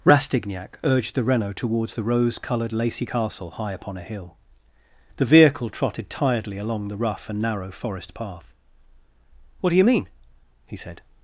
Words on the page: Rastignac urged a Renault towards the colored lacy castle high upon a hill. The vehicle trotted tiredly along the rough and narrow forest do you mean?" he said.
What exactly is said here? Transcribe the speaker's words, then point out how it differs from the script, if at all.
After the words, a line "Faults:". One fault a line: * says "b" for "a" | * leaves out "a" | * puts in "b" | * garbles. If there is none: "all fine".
Rastignac urged the Renault towards the rose colored lacy castle high upon a hill. The vehicle trotted tiredly along the rough and narrow forest path. "What do you mean?" he said.
Faults:
* says "the" for "a"
* puts in "rose"
* puts in "path What"